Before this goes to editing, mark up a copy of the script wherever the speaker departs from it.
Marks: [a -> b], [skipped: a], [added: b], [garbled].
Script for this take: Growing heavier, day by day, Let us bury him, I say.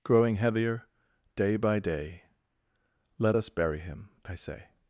Growing heavier, day by day, Let us bury him, I say.